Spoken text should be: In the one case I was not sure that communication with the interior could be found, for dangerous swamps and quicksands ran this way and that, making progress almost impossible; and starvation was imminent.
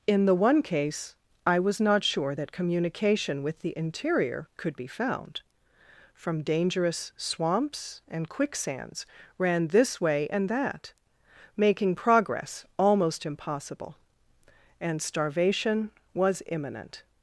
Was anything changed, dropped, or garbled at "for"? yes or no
yes